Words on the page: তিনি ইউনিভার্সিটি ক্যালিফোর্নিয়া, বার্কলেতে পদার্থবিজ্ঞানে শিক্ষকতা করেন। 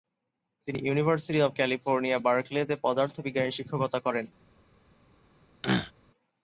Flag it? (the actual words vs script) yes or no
yes